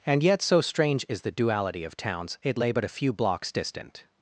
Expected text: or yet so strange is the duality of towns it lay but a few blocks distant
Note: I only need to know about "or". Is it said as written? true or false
false